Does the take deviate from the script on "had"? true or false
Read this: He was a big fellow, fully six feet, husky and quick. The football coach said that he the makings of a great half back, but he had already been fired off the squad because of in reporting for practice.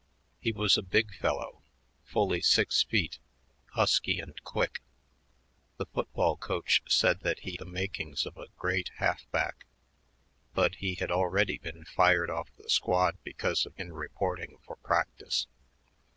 false